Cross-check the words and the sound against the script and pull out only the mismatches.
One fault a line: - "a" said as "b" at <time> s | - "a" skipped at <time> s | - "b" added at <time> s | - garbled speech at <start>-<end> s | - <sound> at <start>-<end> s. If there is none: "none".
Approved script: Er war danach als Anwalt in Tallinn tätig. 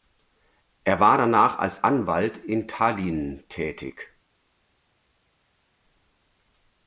none